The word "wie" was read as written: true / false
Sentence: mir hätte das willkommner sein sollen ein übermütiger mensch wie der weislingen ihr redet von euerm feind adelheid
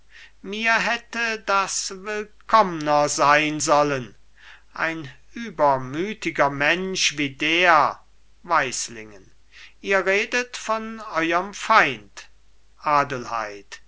true